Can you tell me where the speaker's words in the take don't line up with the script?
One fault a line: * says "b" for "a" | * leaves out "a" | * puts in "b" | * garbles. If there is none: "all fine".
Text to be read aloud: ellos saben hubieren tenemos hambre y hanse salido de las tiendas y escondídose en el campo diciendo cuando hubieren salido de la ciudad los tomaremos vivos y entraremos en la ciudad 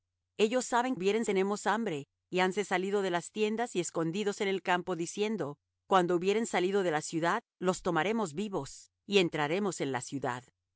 all fine